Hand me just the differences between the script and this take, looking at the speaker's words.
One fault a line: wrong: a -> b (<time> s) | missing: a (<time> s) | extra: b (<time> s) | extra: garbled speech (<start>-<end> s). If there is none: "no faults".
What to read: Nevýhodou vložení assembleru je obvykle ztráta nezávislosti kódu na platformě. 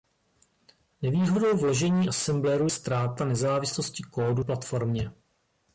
missing: je obvykle (2.7 s)
missing: na (4.4 s)